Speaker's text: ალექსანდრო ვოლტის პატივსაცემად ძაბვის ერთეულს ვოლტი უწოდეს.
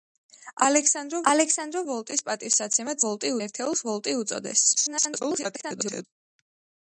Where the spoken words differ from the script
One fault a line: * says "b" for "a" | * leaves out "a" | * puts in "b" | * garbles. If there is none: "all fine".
* puts in "ალექსანდრო"
* says "ვოლტი" for "ძაბვის"
* garbles